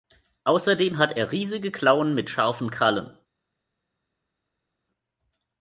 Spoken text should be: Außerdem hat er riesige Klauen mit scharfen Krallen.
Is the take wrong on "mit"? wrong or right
right